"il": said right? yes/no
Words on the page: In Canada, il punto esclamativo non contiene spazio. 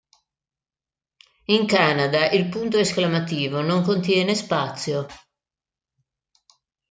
yes